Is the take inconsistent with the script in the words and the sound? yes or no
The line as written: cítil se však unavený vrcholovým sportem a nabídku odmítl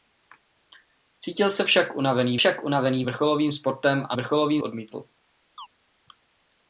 yes